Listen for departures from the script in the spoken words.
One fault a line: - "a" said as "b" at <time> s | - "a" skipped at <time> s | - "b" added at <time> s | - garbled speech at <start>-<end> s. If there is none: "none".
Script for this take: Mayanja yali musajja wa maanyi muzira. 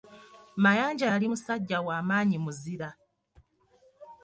none